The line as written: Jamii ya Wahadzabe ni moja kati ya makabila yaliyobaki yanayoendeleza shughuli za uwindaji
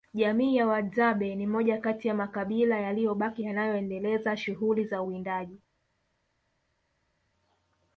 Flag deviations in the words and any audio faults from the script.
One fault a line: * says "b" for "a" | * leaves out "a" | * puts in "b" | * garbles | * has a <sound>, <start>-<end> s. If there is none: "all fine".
all fine